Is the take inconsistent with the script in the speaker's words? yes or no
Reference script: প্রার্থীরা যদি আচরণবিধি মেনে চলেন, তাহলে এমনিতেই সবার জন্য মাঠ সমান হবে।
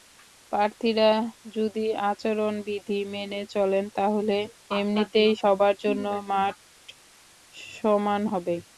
no